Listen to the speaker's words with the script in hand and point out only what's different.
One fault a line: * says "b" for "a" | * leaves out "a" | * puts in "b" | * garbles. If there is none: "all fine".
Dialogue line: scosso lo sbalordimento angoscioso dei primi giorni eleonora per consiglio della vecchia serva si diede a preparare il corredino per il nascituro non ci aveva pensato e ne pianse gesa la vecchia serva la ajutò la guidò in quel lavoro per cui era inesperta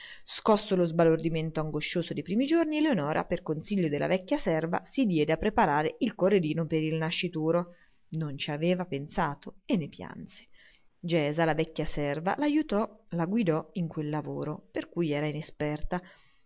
all fine